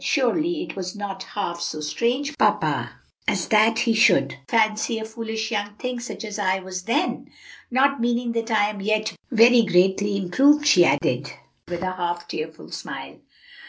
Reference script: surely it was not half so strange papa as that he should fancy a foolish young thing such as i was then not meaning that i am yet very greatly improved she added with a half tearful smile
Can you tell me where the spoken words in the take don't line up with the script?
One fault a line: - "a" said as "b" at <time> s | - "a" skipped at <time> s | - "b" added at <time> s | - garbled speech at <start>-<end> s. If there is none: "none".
none